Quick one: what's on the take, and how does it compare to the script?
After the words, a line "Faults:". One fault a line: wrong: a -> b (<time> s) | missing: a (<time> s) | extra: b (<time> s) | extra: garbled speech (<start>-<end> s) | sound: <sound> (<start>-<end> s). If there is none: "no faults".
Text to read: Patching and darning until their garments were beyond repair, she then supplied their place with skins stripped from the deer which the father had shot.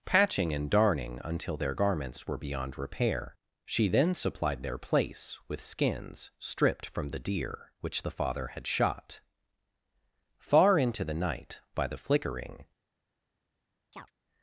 Patching and darning until their garments were beyond repair, she then supplied their place with skins stripped from the deer which the father had shot. Far into the night, by the flickering
Faults:
extra: Far into the night by the flickering (10.4 s)
sound: chirp (13.9-14.1 s)